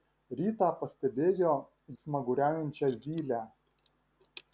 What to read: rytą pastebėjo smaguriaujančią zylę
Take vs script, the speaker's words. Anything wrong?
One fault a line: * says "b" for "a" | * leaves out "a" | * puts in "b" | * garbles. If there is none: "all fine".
all fine